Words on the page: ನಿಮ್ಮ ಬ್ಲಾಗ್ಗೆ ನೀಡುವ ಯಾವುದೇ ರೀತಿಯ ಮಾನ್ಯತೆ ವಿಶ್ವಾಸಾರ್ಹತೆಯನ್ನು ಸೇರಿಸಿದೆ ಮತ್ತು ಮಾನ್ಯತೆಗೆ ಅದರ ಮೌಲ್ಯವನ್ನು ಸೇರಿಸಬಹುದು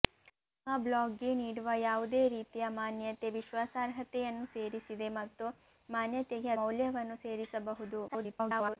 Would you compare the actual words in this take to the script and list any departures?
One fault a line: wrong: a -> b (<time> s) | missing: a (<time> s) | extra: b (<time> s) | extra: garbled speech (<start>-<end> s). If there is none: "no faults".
missing: ಅದರ (6.5 s)
extra: garbled speech (8.1-8.8 s)